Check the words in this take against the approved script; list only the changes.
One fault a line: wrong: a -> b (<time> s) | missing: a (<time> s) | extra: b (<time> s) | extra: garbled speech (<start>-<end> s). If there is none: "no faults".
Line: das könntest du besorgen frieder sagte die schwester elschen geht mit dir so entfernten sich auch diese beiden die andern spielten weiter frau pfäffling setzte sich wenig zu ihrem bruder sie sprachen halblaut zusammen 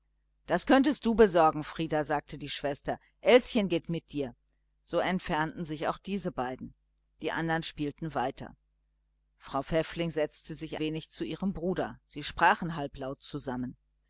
no faults